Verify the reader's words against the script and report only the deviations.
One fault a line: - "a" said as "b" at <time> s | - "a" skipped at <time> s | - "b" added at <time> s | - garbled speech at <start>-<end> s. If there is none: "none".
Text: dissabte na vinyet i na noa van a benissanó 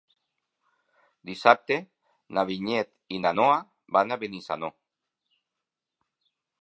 none